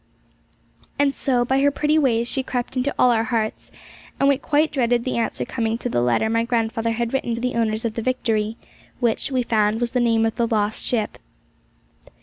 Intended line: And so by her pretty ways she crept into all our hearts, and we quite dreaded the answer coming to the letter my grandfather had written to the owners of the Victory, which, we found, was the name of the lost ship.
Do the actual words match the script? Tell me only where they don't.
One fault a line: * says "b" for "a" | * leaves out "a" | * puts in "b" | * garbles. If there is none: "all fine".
* leaves out "to"